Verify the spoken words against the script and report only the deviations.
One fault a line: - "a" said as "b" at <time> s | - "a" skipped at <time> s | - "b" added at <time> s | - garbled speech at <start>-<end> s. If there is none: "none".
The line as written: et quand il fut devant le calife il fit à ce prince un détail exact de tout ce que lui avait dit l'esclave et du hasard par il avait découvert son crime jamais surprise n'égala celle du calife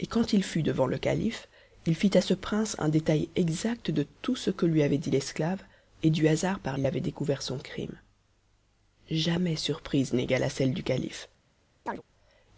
none